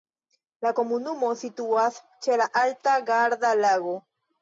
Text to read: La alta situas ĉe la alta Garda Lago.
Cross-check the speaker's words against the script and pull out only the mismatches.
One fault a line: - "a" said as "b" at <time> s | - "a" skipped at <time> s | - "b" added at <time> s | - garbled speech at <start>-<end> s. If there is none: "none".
- "alta" said as "komunumo" at 0.8 s